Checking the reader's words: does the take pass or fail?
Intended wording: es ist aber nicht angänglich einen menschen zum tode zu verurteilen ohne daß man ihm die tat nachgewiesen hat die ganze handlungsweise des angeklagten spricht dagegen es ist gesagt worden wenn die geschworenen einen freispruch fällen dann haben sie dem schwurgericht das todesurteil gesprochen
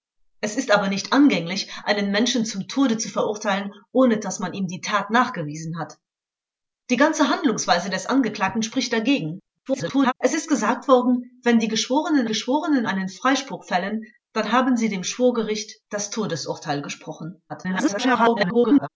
fail